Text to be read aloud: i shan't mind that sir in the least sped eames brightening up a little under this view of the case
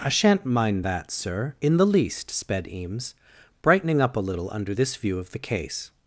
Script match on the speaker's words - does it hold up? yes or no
yes